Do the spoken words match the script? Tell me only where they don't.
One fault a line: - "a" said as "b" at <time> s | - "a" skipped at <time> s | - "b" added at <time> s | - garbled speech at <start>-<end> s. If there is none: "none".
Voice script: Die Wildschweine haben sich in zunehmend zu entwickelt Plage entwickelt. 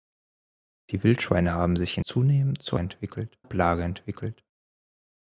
none